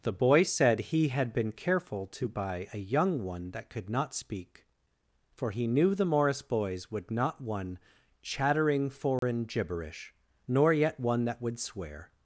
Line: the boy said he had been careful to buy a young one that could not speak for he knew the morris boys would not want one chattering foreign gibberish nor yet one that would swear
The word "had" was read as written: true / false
true